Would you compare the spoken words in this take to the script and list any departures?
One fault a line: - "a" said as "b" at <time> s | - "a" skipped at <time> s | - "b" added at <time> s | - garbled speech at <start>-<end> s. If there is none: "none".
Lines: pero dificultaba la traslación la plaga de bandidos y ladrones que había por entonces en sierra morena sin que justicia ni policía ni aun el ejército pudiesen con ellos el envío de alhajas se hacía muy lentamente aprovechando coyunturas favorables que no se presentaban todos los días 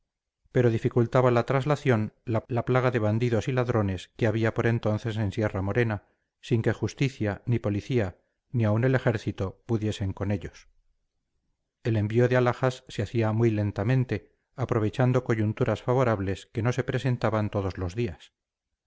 - "la" added at 2.5 s